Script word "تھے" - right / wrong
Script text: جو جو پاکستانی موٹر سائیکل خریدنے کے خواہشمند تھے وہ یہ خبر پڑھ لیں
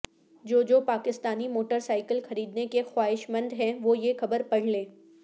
wrong